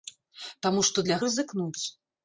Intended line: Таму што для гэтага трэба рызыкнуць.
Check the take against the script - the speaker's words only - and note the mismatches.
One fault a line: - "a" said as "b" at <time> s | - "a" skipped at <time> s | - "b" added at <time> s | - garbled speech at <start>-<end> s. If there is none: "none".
- "гэтага трэба" skipped at 1.2 s